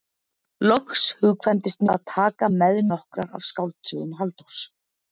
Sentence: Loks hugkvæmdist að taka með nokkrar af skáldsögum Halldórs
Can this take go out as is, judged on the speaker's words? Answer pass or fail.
pass